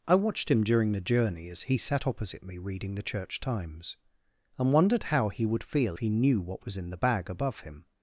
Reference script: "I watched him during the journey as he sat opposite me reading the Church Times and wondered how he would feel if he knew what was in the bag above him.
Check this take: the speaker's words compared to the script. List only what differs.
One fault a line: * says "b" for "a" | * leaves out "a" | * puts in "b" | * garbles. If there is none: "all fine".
* leaves out "if"